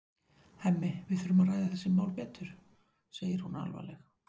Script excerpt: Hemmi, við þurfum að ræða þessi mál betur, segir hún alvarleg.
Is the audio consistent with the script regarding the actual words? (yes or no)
yes